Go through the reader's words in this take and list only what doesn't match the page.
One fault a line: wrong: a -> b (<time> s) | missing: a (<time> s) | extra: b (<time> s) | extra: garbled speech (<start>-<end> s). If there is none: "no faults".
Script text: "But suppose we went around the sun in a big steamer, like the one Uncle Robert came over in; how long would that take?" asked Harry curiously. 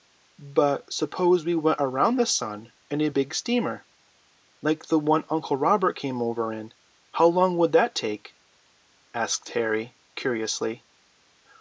no faults